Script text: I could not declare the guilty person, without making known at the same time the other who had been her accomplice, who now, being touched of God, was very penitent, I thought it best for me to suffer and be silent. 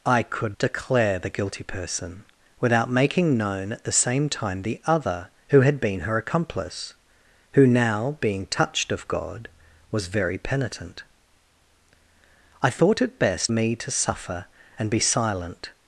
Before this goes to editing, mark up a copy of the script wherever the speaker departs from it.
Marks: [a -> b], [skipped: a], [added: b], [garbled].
I could [skipped: not] declare the guilty person, without making known at the same time the other who had been her accomplice, who now, being touched of God, was very penitent, I thought it best [skipped: for] me to suffer and be silent.